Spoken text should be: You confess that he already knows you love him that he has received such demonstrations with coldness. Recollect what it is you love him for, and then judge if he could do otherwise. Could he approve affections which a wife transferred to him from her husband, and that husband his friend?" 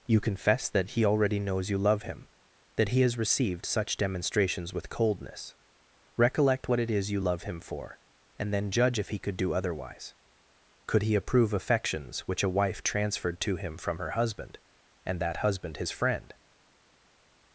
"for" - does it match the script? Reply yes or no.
yes